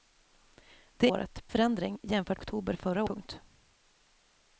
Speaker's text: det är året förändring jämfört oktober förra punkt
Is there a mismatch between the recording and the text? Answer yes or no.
no